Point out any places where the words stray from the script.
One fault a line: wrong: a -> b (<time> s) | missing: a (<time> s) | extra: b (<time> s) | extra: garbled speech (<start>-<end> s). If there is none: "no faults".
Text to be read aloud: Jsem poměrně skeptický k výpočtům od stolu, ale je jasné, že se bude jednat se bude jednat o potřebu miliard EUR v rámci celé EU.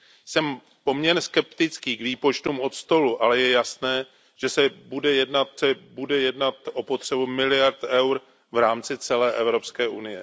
no faults